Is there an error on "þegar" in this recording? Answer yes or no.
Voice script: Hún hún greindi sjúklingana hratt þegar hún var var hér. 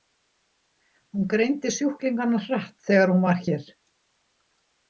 no